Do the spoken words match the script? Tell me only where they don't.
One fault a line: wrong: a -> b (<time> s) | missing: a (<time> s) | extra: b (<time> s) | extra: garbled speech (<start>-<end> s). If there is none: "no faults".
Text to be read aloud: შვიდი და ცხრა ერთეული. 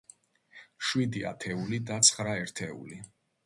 extra: ათეული (1.3 s)